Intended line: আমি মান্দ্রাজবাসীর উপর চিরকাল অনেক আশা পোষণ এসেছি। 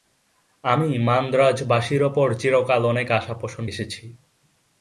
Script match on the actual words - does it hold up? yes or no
yes